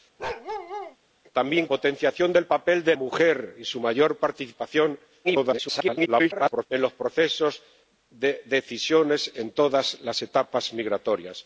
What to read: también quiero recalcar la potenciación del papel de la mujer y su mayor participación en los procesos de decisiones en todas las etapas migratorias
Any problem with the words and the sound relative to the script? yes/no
yes